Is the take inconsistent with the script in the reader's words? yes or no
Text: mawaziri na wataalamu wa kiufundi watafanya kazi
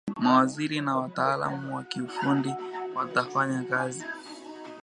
no